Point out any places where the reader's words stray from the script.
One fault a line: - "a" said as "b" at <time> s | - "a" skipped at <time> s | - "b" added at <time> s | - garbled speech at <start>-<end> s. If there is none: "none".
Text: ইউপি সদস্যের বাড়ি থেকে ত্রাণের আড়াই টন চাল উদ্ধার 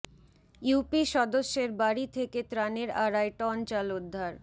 none